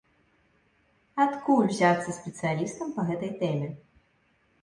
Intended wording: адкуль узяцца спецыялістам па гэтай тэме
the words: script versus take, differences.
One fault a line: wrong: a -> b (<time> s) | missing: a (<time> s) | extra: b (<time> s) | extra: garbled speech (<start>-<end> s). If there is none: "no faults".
no faults